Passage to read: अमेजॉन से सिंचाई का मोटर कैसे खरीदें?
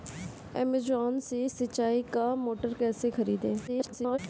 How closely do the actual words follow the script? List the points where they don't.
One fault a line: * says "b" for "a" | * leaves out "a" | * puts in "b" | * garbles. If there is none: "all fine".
* garbles